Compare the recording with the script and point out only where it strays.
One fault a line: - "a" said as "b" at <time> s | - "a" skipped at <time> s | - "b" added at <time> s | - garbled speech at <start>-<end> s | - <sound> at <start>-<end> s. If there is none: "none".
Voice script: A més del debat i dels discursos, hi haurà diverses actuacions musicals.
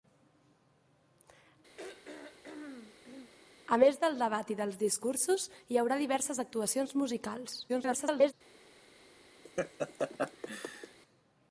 - throat clearing at 1.8-3.3 s
- garbled speech at 7.7-8.3 s
- laugh at 9.4-11.0 s